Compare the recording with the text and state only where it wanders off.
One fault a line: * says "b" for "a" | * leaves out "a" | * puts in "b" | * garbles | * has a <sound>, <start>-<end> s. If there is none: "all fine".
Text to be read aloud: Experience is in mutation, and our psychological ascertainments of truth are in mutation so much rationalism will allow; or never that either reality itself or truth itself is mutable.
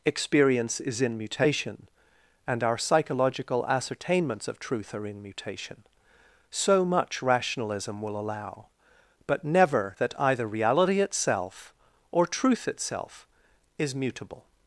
* says "but" for "or"